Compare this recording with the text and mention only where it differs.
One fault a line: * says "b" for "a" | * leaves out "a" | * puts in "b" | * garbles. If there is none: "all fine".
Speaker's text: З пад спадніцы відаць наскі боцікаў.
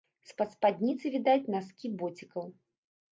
all fine